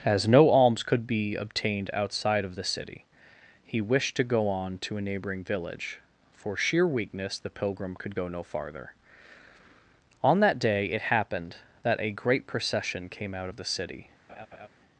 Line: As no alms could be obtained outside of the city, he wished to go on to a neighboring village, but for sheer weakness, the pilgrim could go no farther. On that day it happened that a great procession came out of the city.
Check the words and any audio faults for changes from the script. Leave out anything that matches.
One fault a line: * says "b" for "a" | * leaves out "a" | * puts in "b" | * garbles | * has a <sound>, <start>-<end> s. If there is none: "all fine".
* leaves out "but"
* has a laugh, 14.3-14.7 s